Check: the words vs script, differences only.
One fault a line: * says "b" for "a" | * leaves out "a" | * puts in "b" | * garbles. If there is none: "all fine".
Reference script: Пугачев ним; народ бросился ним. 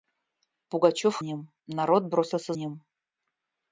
all fine